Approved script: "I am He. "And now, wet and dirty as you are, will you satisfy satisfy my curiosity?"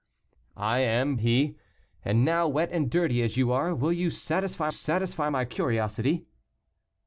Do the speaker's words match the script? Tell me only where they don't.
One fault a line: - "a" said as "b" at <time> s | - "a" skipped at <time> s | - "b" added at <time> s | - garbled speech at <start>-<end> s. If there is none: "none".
none